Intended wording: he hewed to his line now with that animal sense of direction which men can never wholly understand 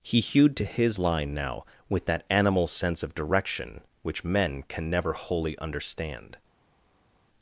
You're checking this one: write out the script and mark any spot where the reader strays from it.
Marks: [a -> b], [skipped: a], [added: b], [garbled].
he hewed to his line now with that animal sense of direction which men can never wholly understand